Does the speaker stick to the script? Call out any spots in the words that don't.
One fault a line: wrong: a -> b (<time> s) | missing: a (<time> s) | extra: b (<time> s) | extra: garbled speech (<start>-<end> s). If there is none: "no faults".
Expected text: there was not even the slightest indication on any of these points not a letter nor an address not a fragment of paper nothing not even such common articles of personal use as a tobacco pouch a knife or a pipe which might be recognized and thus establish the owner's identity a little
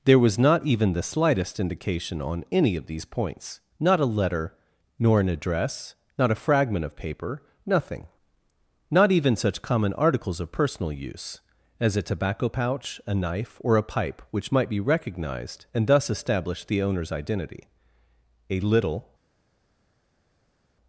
no faults